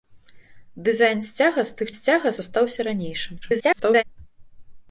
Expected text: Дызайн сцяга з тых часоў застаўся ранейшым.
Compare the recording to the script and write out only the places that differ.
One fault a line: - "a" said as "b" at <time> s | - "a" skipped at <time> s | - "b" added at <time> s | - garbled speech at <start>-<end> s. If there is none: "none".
- "часоў" said as "сцяга" at 1.9 s
- garbled speech at 3.4-4.0 s